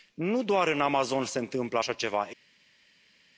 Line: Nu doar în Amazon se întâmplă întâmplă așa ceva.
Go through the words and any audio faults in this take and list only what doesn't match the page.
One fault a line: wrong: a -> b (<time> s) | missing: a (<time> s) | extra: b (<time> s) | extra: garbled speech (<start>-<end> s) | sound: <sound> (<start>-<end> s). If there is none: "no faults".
missing: întâmplă (1.8 s)